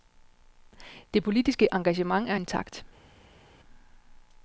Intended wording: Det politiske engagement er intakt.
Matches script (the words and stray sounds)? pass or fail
pass